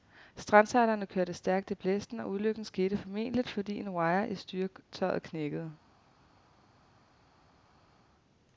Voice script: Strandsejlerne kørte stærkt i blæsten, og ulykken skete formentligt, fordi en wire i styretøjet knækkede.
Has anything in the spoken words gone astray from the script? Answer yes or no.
no